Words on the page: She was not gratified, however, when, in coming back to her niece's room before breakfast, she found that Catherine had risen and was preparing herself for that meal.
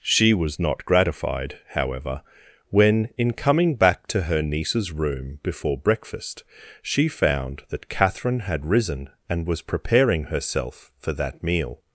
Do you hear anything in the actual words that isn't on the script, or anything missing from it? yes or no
no